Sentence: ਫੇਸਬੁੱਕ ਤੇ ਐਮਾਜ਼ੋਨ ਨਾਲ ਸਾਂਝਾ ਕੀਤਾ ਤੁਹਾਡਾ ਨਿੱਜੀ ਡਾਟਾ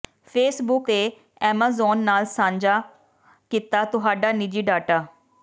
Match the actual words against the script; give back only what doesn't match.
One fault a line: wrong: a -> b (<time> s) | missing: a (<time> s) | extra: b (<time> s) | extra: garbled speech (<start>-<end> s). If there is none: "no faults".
no faults